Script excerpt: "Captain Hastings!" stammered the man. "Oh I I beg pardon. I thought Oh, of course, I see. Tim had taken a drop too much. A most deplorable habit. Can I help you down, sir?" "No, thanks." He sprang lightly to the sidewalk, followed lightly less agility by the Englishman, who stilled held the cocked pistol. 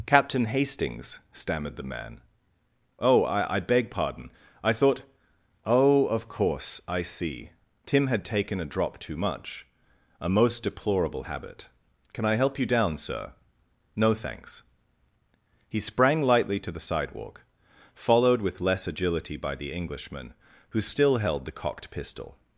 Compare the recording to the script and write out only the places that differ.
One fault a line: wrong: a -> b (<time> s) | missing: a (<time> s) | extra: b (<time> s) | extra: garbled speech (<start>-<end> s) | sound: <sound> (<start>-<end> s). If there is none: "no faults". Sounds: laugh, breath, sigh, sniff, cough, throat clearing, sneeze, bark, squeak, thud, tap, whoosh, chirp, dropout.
wrong: lightly -> with (18.4 s)
wrong: stilled -> still (20.8 s)